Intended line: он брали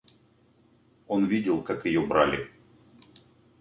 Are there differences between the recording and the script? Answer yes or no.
yes